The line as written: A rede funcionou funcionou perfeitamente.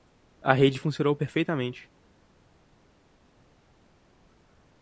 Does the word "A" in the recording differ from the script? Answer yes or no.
no